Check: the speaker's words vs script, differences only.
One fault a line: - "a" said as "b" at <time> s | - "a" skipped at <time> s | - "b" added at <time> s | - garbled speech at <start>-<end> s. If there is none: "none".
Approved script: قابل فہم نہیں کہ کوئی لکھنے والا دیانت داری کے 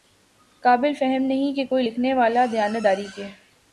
none